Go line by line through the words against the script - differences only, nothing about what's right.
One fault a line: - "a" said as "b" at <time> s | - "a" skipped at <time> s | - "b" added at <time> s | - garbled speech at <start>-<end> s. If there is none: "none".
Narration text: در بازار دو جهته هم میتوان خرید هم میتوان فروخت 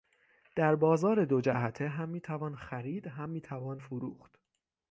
none